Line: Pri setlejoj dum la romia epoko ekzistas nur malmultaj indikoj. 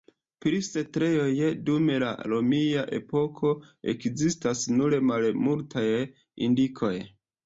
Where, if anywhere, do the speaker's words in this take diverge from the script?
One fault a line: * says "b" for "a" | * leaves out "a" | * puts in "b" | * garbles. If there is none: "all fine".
all fine